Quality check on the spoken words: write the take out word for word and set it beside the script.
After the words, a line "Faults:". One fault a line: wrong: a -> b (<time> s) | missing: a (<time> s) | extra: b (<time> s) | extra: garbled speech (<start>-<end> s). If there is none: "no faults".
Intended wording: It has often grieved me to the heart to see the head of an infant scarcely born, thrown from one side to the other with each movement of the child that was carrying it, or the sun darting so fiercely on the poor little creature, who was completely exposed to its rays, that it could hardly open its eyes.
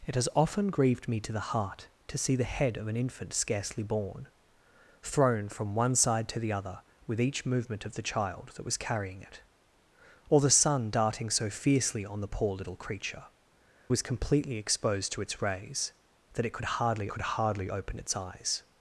It has often grieved me to the heart to see the head of an infant scarcely born, thrown from one side to the other with each movement of the child that was carrying it, or the sun darting so fiercely on the poor little creature, was completely exposed to its rays, that it could hardly could hardly open its eyes.
Faults:
missing: who (13.2 s)
extra: could hardly (17.1 s)